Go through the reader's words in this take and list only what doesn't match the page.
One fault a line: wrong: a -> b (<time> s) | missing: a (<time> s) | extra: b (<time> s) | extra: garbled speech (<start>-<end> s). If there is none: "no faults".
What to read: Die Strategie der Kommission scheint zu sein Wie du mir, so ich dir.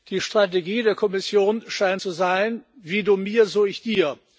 no faults